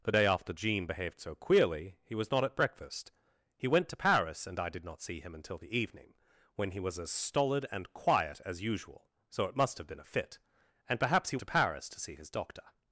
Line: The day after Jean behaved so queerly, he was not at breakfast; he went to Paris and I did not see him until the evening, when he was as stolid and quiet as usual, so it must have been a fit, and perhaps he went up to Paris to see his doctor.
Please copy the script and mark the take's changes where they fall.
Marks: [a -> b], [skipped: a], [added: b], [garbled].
The day after Jean behaved so queerly, he was not at breakfast; he went to Paris and I did not see him until the evening, when he was as stolid and quiet as usual, so it must have been a fit, and perhaps he [skipped: went up] to Paris to see his doctor.